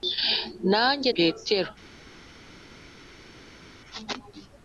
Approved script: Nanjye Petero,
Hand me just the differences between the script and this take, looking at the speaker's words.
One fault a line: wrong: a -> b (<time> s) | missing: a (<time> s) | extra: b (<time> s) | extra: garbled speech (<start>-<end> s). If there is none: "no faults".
no faults